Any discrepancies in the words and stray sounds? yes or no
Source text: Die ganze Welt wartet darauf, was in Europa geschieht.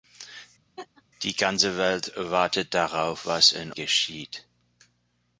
yes